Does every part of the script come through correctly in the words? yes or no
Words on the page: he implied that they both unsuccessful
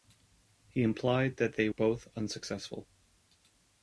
yes